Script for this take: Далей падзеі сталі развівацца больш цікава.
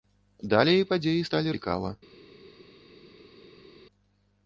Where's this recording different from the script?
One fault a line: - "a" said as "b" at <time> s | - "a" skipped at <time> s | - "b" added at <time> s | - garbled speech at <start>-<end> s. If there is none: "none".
- "развівацца больш" skipped at 1.6 s